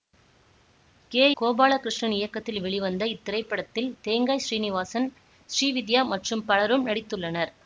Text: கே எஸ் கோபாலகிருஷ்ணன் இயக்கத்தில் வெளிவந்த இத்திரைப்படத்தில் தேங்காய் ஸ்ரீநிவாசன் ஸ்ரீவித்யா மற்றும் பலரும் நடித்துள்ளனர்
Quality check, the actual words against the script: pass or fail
fail